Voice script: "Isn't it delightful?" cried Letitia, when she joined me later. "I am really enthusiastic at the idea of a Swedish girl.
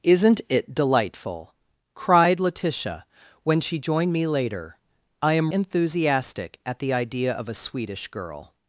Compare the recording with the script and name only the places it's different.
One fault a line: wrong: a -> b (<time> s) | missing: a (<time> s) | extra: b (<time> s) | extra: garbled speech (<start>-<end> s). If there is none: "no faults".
missing: really (5.5 s)